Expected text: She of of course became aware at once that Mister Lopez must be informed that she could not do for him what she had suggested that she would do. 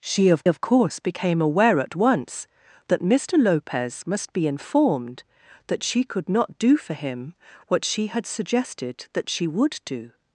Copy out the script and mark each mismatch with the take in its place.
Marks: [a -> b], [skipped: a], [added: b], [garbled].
She of of course became aware at once that Mister Lopez must be informed that she could not do for him what she had suggested that she would do.